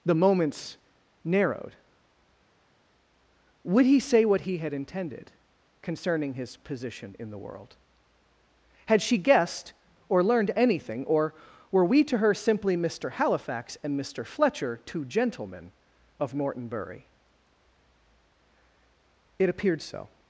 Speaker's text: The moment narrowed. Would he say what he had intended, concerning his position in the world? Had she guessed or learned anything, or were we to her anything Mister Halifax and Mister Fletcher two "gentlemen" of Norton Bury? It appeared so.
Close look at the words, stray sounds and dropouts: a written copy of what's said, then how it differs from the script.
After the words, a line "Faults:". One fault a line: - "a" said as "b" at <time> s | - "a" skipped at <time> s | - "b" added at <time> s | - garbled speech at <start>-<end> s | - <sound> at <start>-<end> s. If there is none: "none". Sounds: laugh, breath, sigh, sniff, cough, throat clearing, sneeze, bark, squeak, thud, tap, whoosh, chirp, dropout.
The moments narrowed. Would he say what he had intended, concerning his position in the world? Had she guessed or learned anything, or were we to her simply Mister Halifax and Mister Fletcher two "gentlemen" of Norton Bury? It appeared so.
Faults:
- "moment" said as "moments" at 0.1 s
- "anything" said as "simply" at 12.3 s